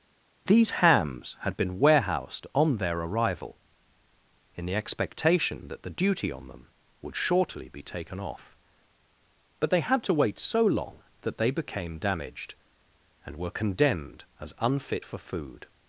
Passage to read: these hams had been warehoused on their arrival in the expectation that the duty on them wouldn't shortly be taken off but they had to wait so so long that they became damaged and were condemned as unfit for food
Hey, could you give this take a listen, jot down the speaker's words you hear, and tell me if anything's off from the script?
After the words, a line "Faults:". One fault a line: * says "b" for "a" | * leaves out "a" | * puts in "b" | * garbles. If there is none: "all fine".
these hams had been warehoused on their arrival in the expectation that the duty on them would shortly be taken off but they had to wait so long that they became damaged and were condemned as unfit for food
Faults:
* says "would" for "wouldn't"
* leaves out "so"